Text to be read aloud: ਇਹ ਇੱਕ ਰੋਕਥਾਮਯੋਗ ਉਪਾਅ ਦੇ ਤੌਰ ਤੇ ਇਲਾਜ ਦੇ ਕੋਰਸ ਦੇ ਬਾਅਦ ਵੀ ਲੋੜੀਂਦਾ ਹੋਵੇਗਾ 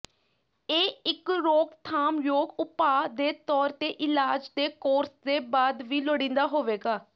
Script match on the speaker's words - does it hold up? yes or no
yes